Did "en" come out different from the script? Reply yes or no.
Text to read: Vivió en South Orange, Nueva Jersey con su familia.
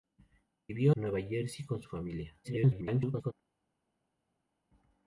yes